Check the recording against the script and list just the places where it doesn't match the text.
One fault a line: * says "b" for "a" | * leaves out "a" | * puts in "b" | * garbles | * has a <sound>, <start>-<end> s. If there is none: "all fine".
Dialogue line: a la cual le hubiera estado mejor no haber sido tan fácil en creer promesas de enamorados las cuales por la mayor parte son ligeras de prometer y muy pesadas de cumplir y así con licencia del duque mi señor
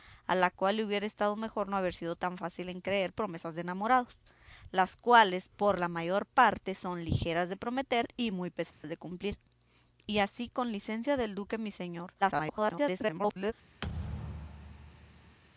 * has a dropout, 8.7-8.8 s
* garbles
* has a thud, 13.8-15.4 s